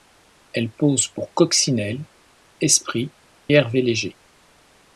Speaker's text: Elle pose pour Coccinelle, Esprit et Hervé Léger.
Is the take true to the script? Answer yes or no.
no